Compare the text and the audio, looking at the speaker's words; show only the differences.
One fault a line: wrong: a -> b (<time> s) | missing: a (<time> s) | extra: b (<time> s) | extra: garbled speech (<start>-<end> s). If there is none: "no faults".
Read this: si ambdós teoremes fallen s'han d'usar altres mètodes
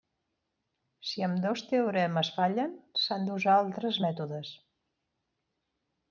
no faults